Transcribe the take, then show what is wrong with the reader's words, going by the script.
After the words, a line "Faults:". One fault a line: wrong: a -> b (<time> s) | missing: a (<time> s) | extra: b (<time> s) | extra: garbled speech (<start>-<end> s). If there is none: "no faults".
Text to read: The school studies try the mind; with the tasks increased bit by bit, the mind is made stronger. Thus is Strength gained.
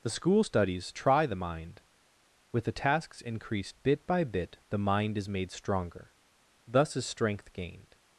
The school studies try the mind; with the tasks increased bit by bit, the mind is made stronger. Thus is Strength gained.
Faults:
no faults